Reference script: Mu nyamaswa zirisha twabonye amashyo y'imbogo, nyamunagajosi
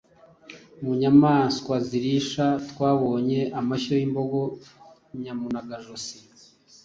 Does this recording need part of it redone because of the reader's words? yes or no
no